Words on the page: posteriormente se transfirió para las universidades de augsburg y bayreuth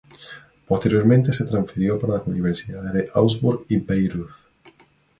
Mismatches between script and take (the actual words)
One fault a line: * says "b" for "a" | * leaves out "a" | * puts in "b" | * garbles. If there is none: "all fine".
all fine